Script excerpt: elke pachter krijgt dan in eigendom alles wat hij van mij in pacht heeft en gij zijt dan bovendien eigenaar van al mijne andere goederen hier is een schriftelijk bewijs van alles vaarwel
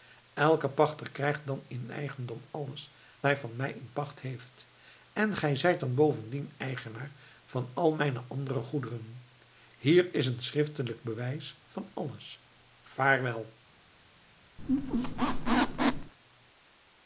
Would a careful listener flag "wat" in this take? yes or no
yes